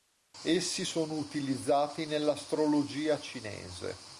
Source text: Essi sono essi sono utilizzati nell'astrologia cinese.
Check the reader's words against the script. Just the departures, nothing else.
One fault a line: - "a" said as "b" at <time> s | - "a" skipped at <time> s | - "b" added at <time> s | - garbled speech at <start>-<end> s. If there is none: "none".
- "essi sono" skipped at 1.2 s